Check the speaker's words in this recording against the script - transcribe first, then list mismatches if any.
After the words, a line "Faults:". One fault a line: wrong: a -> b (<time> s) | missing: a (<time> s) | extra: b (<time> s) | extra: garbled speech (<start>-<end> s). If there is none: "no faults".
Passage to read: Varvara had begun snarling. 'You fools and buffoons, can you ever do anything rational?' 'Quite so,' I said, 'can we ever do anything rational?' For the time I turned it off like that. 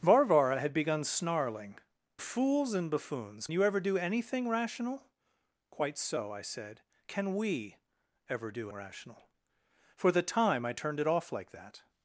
Varvara had begun snarling. 'Fools and buffoons, you ever do anything rational?' 'Quite so,' I said, 'can we ever do rational?' For the time I turned it off like that.
Faults:
missing: You (1.8 s)
missing: can (3.5 s)
missing: anything (8.7 s)